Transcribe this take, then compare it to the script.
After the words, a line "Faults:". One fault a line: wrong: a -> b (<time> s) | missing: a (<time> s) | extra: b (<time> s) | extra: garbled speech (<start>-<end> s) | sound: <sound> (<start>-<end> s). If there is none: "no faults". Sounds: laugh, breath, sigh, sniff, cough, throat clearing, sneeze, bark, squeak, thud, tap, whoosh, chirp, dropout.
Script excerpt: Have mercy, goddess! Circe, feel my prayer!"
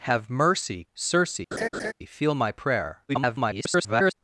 Have mercy! Circe, feel my prayer!" [garbled]
Faults:
missing: goddess (0.8 s)
sound: laugh (1.5-1.9 s)
extra: garbled speech (3.1-4.1 s)